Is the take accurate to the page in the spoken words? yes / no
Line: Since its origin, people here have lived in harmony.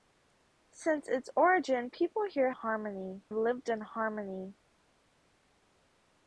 no